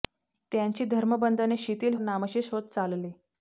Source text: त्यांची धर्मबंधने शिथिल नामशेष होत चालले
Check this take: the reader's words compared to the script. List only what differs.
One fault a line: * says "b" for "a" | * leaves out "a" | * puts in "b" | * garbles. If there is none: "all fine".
all fine